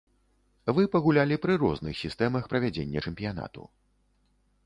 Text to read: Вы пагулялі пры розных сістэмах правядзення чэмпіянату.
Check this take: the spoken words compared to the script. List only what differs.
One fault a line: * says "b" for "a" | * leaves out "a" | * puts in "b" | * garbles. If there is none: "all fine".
all fine